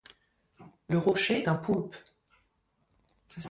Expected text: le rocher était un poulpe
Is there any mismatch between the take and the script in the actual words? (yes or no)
yes